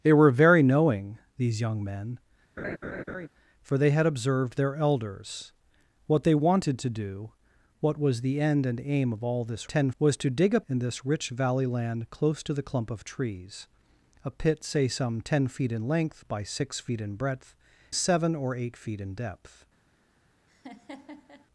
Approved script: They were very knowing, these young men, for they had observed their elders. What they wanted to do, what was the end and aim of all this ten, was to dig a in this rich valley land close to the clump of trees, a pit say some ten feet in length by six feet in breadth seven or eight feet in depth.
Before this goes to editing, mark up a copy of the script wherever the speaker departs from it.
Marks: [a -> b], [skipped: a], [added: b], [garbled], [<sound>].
They were very knowing, these young men, [laugh] for they had observed their elders. What they wanted to do, what was the end and aim of all this ten, was to dig a in this rich valley land close to the clump of trees, a pit say some ten feet in length by six feet in breadth seven or eight feet in depth. [laugh]